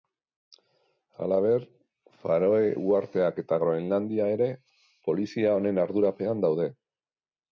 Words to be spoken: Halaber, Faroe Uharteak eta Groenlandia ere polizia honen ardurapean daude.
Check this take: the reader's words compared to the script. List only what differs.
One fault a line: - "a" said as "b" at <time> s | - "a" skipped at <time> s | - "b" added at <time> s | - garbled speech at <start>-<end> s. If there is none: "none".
none